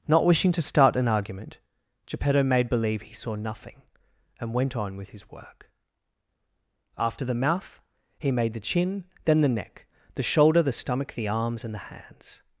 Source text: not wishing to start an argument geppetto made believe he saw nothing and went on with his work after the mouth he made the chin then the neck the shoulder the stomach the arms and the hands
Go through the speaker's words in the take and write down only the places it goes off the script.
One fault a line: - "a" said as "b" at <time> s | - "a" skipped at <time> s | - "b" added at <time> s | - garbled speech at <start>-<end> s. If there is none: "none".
none